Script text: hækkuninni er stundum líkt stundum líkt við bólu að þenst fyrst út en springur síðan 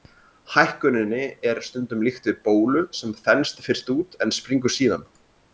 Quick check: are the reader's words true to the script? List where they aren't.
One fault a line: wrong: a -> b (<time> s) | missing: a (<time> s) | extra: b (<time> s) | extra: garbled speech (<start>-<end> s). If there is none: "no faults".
missing: stundum líkt (2.3 s)
wrong: að -> sem (3.0 s)